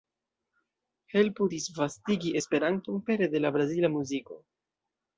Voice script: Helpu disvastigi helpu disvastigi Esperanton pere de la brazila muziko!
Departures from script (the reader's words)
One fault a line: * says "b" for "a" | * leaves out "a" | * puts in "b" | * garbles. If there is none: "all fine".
* leaves out "helpu disvastigi"